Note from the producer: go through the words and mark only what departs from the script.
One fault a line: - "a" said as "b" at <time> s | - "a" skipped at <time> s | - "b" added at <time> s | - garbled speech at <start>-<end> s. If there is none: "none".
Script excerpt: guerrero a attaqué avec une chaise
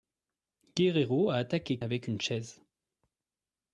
none